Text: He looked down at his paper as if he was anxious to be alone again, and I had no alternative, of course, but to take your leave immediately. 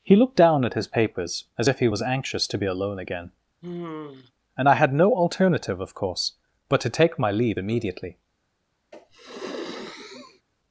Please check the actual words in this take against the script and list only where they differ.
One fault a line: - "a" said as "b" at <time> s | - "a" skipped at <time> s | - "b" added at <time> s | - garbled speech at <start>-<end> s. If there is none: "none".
- "paper" said as "papers" at 0.9 s
- "your" said as "my" at 7.2 s